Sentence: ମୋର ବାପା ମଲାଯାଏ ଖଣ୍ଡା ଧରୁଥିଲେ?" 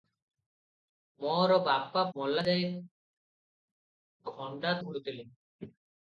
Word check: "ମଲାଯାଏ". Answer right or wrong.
right